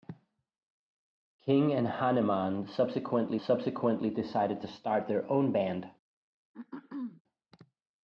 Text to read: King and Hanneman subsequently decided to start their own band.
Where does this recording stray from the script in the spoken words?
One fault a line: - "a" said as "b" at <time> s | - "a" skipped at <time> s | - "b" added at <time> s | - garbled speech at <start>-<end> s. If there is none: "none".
- "subsequently" added at 3.4 s